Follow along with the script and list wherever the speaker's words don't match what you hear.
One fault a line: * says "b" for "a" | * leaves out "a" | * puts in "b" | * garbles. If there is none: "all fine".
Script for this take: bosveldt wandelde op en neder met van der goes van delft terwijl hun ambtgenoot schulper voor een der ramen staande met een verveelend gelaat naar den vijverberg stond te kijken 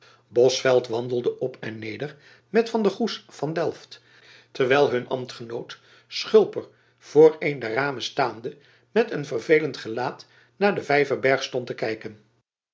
all fine